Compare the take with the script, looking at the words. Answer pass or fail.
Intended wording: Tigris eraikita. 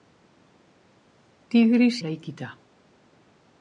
pass